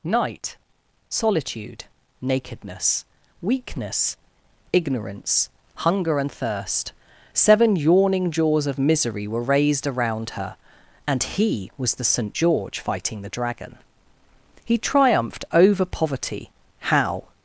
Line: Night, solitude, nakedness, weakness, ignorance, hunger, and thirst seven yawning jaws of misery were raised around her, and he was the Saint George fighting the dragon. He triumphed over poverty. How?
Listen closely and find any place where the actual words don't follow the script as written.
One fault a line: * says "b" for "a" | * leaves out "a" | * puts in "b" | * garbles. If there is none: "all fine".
all fine